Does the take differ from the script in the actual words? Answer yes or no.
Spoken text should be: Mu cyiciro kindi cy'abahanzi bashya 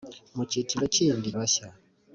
yes